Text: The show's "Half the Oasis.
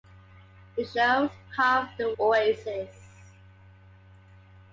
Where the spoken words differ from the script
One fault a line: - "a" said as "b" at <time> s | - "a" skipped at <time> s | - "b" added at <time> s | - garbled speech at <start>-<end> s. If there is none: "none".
none